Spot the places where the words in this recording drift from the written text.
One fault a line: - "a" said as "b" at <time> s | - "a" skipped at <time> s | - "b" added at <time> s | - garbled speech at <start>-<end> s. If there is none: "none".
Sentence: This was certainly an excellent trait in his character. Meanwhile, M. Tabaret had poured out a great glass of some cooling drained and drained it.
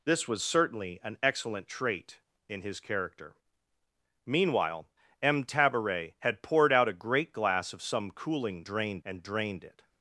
none